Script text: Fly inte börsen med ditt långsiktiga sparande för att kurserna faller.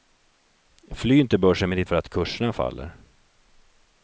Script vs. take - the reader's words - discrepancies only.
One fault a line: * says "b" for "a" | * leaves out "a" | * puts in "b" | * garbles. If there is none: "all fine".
* leaves out "långsiktiga sparande"